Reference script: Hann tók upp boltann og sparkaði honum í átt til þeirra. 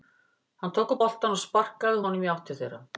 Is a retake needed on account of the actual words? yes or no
no